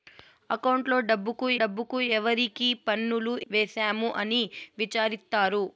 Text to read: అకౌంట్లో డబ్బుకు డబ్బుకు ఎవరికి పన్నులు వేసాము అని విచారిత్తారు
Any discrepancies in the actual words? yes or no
no